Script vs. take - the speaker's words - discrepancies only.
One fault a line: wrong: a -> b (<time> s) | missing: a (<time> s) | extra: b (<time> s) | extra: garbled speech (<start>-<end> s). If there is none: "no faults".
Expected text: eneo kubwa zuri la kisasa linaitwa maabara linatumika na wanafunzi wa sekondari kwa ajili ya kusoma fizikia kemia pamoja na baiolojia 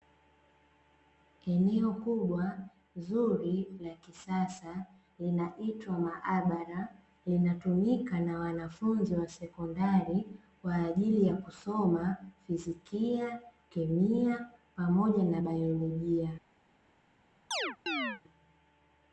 no faults